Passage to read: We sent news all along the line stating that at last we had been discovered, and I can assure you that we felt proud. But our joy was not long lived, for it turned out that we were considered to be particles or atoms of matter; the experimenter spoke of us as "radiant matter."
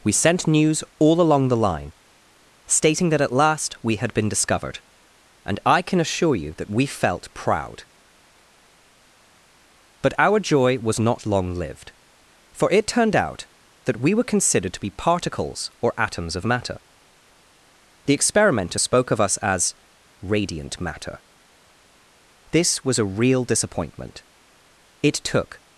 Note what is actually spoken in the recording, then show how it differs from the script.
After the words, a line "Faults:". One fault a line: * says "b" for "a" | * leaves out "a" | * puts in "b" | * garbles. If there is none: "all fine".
We sent news all along the line stating that at last we had been discovered, and I can assure you that we felt proud. But our joy was not long lived, for it turned out that we were considered to be particles or atoms of matter; the experimenter spoke of us as "radiant matter." This was a real disappointment. It took
Faults:
* puts in "This was a real disappointment It took"